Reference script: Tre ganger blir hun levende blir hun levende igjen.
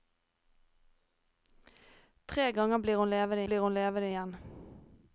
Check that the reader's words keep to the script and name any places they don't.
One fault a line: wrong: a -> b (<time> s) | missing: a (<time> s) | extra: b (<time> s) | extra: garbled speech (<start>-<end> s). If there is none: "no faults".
no faults